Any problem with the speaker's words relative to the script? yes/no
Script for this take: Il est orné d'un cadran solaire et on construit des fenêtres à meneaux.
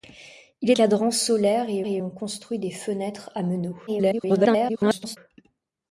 yes